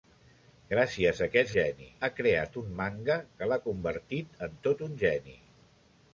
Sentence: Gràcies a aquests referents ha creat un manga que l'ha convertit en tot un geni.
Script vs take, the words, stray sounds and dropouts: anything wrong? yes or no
yes